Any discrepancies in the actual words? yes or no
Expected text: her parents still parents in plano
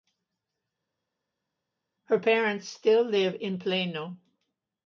yes